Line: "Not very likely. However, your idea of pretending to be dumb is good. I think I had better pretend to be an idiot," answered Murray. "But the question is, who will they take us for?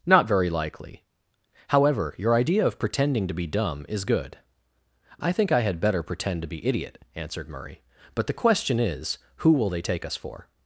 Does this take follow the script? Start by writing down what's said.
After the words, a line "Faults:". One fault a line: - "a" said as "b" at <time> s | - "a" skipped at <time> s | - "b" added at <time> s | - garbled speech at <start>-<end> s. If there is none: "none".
"Not very likely. However, your idea of pretending to be dumb is good. I think I had better pretend to be idiot," answered Murray. "But the question is, who will they take us for?
Faults:
- "an" skipped at 6.7 s